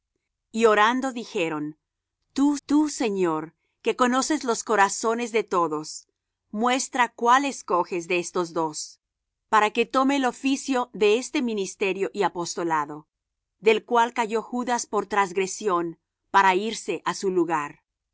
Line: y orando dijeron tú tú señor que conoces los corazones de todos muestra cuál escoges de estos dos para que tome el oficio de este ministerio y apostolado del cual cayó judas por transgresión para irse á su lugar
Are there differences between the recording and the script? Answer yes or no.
no